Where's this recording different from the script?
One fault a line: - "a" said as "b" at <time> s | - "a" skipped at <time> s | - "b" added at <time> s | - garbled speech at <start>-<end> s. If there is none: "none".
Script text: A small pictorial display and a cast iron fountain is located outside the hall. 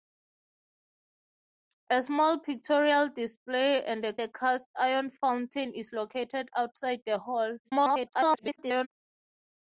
- "a" added at 4.2 s
- garbled speech at 7.6-8.9 s